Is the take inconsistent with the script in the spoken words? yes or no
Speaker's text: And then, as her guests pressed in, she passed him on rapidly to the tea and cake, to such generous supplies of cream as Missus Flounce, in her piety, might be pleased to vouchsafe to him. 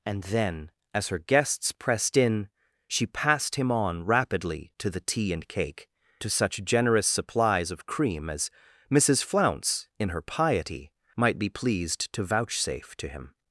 no